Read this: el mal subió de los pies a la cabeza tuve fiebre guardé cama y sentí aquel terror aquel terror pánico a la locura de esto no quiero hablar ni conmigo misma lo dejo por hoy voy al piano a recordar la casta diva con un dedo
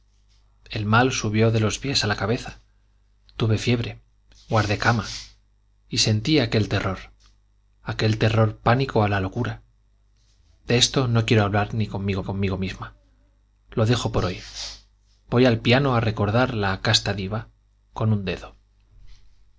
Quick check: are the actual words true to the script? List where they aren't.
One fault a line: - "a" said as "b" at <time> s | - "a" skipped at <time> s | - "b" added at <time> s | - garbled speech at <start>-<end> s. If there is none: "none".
- "conmigo" added at 12.2 s